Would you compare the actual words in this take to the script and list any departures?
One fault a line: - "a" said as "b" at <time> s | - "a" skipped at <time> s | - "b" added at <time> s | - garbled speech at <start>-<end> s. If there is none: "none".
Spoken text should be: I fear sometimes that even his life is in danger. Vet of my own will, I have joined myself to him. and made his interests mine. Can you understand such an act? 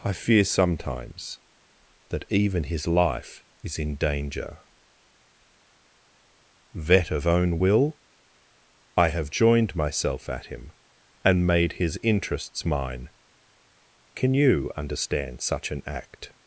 - "my" skipped at 7.3 s
- "to" said as "at" at 10.3 s